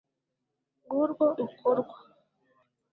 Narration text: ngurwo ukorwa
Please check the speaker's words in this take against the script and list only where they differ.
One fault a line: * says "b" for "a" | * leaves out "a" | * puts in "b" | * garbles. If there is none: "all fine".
all fine